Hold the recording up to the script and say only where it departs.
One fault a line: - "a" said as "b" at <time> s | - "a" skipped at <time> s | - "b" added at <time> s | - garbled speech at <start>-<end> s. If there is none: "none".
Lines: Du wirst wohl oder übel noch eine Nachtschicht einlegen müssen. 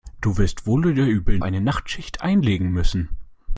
- "noch" skipped at 1.4 s